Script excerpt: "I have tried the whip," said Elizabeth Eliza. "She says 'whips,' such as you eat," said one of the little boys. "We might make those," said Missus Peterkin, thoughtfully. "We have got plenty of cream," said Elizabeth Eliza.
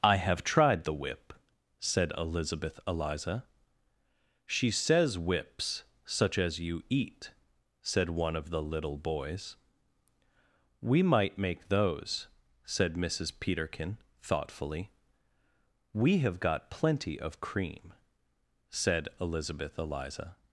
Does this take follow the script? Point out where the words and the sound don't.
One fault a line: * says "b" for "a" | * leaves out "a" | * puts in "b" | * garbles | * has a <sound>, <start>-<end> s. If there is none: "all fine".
all fine